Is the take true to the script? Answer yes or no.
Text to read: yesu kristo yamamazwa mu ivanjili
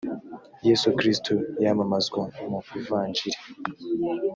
yes